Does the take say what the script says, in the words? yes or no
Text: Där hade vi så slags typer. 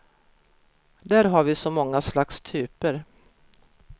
no